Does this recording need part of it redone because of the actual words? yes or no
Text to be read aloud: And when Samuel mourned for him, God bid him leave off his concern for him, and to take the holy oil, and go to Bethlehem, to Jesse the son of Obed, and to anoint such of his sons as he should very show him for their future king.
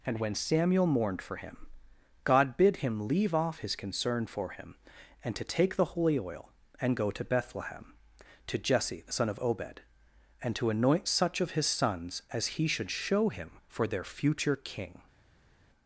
yes